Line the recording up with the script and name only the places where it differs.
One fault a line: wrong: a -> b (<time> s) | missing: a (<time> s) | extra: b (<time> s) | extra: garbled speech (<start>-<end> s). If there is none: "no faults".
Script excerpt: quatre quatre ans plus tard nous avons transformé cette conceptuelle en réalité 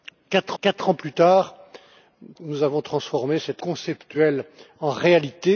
no faults